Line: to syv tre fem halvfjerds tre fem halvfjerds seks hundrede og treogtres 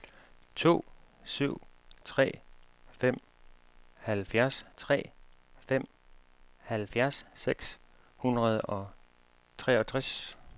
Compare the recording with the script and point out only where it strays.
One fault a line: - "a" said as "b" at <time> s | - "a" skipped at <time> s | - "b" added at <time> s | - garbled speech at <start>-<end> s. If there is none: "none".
none